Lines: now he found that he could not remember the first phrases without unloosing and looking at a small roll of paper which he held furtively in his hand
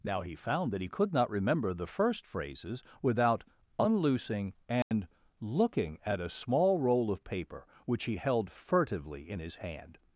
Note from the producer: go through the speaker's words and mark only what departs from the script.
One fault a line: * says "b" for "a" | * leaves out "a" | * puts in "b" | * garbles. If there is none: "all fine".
all fine